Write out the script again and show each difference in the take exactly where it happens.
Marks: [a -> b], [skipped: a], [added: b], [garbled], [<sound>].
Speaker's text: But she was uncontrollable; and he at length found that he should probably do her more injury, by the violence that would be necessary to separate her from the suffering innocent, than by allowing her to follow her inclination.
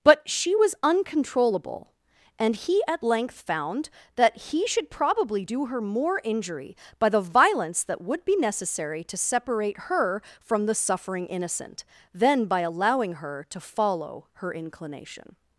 But she was uncontrollable; and he at length found that he should probably do her more injury, by the violence that would be necessary to separate her from the suffering innocent, than by allowing her to follow her inclination.